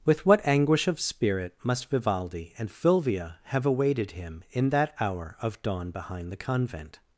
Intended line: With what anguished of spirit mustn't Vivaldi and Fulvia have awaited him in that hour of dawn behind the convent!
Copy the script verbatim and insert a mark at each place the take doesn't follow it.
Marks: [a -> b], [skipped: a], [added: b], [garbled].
With what [anguished -> anguish] of spirit [mustn't -> must] Vivaldi and Fulvia have awaited him in that hour of dawn behind the convent!